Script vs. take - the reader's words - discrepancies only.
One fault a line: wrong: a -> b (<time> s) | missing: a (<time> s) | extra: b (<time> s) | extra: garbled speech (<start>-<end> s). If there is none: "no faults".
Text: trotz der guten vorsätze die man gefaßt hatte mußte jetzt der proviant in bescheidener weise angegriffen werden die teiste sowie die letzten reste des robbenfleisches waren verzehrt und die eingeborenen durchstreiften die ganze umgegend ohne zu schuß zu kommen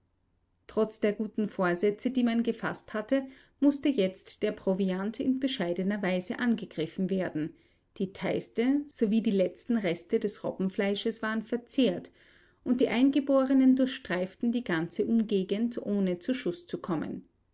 no faults